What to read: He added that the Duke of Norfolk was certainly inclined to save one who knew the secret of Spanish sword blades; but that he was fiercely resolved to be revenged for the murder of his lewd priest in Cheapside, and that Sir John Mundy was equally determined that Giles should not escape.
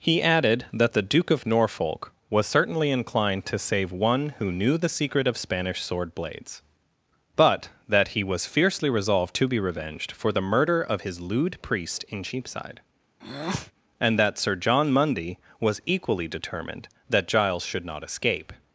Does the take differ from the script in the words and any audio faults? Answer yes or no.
yes